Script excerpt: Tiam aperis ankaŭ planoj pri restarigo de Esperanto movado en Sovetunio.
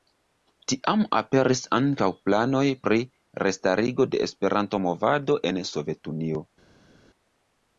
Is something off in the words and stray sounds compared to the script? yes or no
no